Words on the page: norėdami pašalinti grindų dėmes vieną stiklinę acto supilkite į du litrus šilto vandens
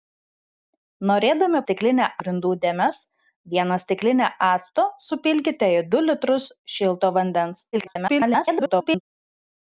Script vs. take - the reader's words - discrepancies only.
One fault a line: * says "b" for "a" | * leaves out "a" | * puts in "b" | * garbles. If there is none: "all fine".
* says "stiklinę" for "pašalinti"
* garbles